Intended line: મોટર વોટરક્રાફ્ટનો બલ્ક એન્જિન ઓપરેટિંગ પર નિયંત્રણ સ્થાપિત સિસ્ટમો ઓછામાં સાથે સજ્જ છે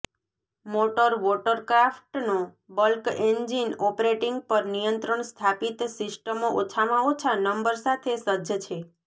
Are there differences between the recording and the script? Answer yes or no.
yes